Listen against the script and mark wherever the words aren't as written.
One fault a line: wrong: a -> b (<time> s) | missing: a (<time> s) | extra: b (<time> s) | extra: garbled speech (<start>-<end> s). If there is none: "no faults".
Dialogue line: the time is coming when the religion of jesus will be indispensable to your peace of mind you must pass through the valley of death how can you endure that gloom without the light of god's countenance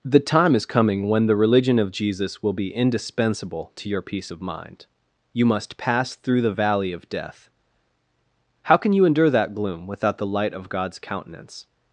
no faults